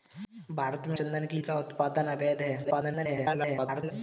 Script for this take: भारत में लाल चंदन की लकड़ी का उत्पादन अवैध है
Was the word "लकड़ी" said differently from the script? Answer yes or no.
yes